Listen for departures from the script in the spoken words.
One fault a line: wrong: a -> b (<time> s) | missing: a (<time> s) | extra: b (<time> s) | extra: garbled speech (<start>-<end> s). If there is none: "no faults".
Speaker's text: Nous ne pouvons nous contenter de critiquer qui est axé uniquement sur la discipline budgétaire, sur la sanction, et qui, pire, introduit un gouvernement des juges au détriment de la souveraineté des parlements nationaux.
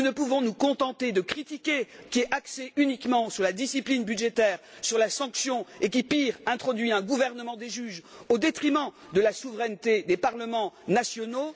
no faults